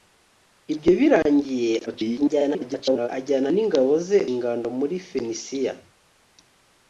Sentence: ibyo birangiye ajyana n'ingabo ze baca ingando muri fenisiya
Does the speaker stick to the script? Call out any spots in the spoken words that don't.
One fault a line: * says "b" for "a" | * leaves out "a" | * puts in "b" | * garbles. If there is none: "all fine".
* garbles
* leaves out "baca"